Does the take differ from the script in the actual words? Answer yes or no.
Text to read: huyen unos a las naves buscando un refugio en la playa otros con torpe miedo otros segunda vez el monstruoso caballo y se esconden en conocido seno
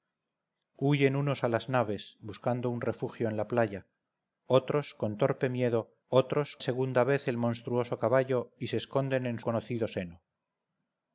no